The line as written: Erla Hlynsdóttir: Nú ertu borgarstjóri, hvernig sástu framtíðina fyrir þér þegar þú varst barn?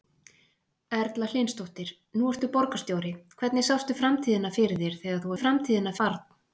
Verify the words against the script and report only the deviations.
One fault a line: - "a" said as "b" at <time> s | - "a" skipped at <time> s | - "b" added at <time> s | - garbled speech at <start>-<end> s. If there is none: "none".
- "varst" said as "framtíðina" at 5.4 s